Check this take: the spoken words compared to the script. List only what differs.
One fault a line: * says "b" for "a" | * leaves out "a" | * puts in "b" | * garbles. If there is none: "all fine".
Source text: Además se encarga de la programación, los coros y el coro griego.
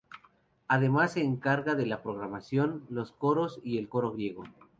all fine